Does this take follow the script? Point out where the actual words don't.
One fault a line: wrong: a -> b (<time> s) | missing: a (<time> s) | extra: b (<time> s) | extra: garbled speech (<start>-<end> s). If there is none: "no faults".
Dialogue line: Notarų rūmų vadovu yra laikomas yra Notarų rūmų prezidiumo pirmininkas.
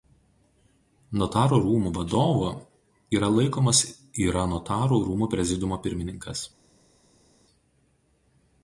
no faults